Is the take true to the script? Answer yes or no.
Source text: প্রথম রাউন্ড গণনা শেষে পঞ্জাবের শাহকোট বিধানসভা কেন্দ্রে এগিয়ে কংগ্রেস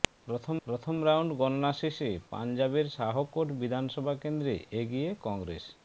no